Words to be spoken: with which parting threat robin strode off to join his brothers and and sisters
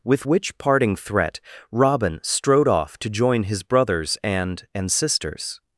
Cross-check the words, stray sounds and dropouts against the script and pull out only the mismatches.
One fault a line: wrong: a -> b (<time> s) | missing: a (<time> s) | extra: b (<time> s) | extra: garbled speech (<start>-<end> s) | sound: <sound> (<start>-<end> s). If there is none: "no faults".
no faults